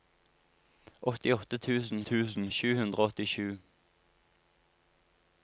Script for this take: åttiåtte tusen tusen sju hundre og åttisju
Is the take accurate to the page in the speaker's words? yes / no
yes